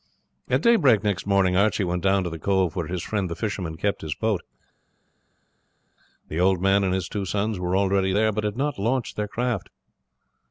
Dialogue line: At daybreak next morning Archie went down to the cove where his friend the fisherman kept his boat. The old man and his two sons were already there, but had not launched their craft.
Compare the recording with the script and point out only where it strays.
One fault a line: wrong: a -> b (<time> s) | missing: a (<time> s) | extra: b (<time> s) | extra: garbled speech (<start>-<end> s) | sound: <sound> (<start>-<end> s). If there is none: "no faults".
no faults